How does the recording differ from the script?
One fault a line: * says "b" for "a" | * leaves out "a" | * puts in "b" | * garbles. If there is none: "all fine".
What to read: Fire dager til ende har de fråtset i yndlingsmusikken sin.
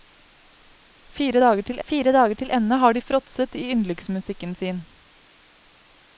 * puts in "fire dager til"